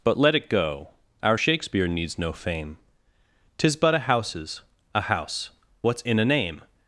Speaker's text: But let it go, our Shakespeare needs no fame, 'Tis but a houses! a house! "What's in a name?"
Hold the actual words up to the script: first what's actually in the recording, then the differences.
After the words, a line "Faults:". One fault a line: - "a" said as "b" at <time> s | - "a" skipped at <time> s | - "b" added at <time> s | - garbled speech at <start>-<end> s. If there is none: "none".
But let it go, our Shakespeare needs no fame, 'Tis but a houses! a house! "What's in a name?"
Faults:
none